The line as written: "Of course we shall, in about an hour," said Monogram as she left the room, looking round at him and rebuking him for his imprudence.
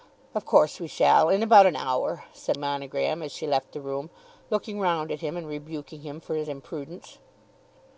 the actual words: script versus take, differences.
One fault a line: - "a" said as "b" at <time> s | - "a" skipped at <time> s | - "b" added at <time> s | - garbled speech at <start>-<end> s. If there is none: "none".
none